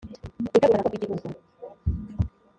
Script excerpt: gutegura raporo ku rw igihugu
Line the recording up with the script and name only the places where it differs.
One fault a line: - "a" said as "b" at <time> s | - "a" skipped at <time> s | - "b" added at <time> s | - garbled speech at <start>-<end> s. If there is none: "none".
none